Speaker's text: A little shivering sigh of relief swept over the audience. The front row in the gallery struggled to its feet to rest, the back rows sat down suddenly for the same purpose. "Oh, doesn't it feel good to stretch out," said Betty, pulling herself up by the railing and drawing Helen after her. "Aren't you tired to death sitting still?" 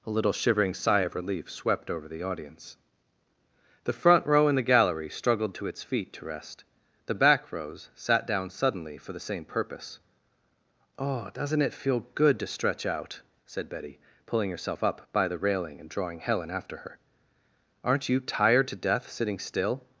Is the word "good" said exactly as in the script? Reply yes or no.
yes